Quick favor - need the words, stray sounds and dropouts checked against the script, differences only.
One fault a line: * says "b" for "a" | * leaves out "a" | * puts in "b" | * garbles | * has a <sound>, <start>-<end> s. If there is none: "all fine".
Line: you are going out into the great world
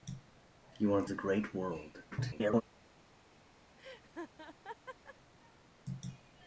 * leaves out "going out into"
* garbles
* has a laugh, 3.8-5.2 s